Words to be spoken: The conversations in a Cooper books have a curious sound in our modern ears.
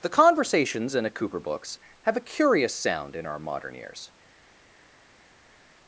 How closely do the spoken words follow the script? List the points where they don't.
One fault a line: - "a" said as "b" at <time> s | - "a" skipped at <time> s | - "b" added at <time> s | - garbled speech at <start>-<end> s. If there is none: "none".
none